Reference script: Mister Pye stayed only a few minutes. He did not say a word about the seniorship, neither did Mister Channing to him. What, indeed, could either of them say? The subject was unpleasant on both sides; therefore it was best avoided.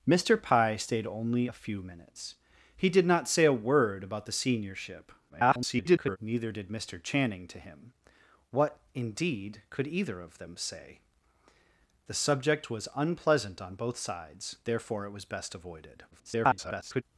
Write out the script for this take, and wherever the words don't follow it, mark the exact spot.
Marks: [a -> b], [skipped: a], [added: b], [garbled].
Mister Pye stayed only a few minutes. He did not say a word about the seniorship, [garbled] neither did Mister Channing to him. What, indeed, could either of them say? The subject was unpleasant on both sides; therefore it was best avoided. [garbled]